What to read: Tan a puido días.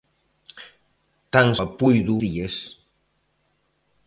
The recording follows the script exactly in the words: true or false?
true